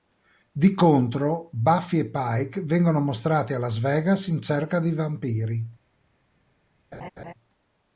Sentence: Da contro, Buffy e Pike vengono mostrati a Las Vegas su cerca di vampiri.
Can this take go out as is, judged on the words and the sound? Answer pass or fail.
fail